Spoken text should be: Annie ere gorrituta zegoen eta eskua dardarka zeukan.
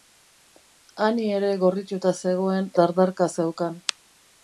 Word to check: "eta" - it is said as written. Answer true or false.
false